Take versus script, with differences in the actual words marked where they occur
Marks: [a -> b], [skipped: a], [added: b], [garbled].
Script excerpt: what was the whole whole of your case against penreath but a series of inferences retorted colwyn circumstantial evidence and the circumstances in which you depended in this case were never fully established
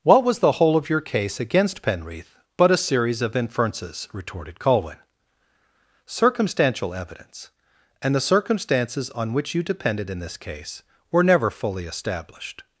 what was the whole [skipped: whole] of your case against penreath but a series of inferences retorted colwyn circumstantial evidence and the circumstances [in -> on] which you depended in this case were never fully established